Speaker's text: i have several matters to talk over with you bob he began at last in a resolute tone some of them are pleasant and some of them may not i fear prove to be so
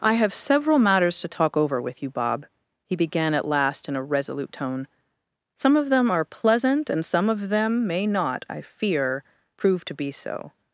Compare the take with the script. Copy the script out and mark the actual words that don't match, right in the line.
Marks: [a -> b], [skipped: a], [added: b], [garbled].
i have several matters to talk over with you bob he began at last in a resolute tone some of them are pleasant and some of them may not i fear prove to be so